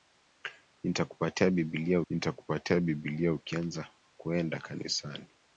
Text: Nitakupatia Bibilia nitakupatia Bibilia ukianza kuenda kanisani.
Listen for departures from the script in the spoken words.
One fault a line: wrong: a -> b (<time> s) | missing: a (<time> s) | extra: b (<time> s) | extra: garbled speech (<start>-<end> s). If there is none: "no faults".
no faults